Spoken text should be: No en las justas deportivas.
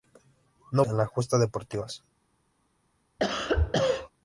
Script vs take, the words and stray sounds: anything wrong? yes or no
yes